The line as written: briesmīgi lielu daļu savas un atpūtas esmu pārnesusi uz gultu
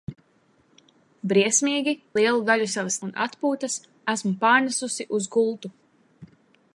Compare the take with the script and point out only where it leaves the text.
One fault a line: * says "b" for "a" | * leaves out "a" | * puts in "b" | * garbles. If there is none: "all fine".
all fine